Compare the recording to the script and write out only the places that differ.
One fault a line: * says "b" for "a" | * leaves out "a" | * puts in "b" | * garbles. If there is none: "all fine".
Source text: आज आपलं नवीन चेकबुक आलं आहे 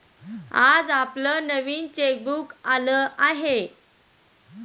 all fine